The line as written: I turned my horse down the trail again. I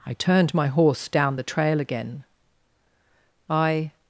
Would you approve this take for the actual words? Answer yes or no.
yes